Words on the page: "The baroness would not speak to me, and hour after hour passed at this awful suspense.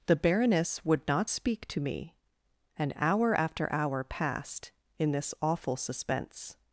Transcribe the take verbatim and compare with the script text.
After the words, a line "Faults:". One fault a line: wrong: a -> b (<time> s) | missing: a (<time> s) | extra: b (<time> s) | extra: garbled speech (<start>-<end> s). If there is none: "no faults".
"The baroness would not speak to me, and hour after hour passed in this awful suspense.
Faults:
wrong: at -> in (5.0 s)